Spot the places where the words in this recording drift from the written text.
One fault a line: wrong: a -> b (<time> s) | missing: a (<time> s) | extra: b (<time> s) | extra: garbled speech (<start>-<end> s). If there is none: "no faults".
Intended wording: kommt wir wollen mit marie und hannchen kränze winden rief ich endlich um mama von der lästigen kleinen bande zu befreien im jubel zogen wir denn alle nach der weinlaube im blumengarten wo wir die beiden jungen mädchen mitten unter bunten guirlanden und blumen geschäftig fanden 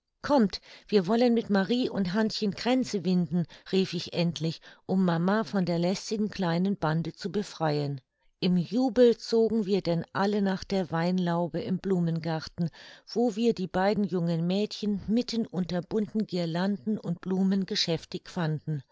no faults